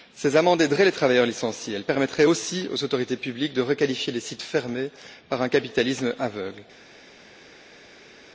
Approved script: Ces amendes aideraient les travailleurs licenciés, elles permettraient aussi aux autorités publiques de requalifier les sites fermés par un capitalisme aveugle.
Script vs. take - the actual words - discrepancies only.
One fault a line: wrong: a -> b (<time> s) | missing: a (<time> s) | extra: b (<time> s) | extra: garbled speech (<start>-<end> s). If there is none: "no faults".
no faults